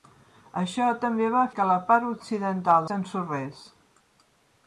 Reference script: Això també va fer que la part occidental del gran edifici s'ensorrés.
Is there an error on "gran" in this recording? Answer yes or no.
yes